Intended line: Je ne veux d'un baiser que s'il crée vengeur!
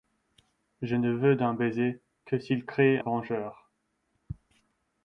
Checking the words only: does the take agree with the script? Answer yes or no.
yes